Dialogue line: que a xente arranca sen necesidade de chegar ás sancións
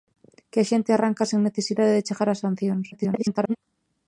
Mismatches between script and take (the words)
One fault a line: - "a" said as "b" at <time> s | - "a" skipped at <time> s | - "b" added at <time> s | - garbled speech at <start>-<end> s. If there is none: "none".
- garbled speech at 2.9-3.6 s